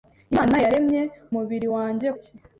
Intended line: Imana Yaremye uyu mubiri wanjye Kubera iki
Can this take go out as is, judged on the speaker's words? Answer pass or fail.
fail